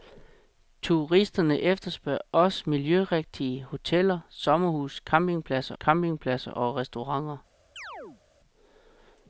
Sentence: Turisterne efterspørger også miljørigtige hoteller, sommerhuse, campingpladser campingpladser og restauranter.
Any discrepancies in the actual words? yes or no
no